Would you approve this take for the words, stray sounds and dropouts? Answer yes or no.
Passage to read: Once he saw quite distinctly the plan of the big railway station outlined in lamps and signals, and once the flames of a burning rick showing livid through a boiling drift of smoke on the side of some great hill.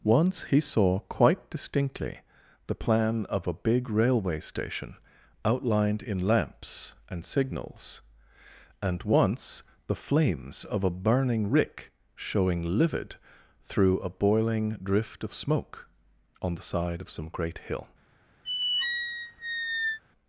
no